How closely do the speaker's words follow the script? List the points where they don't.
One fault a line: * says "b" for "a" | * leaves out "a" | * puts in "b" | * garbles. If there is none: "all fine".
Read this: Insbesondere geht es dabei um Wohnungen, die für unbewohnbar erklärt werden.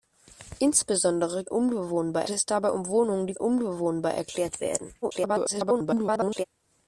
* says "unbewohnbar" for "geht"
* leaves out "für"
* garbles